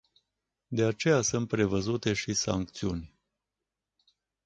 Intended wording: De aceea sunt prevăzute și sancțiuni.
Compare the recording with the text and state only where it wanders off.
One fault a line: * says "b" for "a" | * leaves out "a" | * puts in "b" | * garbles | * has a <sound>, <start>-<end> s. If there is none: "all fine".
all fine